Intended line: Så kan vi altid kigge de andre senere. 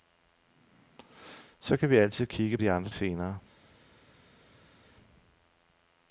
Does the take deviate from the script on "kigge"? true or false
false